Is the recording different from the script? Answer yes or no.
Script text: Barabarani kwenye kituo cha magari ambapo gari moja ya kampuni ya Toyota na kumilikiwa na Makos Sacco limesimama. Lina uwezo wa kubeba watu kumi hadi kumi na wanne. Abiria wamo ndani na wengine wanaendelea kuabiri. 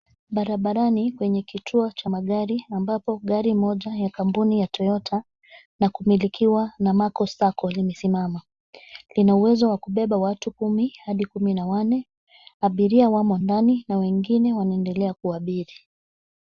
no